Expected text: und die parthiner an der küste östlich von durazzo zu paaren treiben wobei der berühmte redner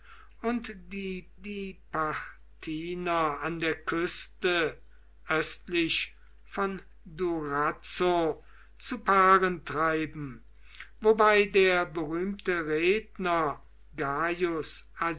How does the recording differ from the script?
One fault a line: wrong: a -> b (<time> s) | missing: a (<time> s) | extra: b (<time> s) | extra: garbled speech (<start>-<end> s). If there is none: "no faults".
extra: die (1.4 s)